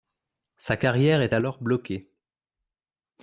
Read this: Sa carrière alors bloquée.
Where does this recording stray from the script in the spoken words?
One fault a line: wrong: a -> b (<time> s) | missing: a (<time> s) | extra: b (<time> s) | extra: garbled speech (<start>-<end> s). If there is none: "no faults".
extra: est (1.2 s)